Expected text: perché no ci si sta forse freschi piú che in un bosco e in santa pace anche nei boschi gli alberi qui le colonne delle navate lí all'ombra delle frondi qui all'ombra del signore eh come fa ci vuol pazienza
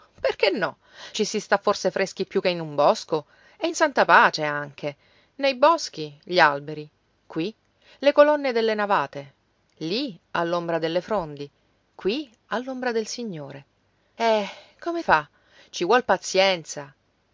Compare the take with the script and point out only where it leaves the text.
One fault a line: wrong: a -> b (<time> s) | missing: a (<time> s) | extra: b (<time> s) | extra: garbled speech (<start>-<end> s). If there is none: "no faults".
no faults